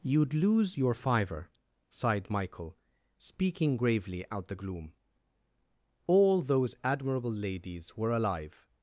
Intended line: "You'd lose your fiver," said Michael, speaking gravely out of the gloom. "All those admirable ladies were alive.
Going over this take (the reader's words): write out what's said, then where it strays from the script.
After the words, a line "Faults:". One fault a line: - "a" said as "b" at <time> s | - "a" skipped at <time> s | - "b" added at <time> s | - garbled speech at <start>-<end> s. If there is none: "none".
"You'd lose your fiver," sighed Michael, speaking gravely out the gloom. "All those admirable ladies were alive.
Faults:
- "said" said as "sighed" at 1.9 s
- "of" skipped at 4.5 s